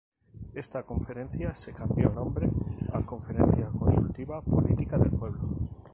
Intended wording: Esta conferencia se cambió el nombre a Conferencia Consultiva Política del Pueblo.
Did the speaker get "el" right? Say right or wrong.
wrong